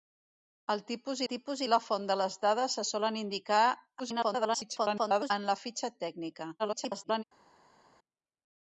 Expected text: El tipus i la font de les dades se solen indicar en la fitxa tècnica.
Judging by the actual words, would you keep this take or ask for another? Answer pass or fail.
fail